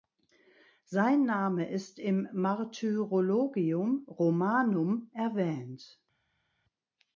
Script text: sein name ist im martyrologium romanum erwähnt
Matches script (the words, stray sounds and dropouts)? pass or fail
pass